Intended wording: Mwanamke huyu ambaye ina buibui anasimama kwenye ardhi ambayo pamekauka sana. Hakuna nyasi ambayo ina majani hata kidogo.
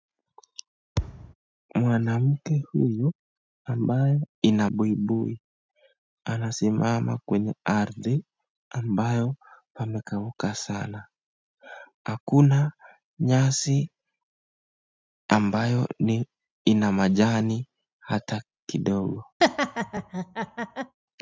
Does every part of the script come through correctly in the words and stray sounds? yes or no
no